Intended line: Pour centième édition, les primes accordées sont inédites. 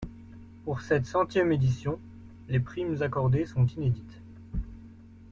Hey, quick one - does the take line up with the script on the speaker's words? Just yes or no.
no